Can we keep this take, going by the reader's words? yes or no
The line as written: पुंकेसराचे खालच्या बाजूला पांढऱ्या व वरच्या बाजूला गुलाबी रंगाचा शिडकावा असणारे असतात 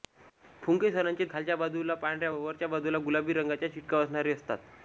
yes